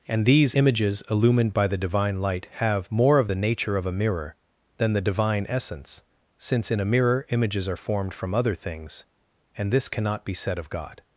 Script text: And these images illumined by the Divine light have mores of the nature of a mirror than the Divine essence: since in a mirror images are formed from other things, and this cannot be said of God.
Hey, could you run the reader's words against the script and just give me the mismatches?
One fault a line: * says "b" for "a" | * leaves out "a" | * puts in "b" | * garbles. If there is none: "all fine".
* says "more" for "mores"